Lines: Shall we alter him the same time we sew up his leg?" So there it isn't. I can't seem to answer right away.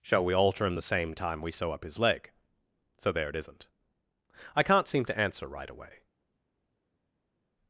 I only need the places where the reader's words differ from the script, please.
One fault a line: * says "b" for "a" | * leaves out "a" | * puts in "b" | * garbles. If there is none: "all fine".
all fine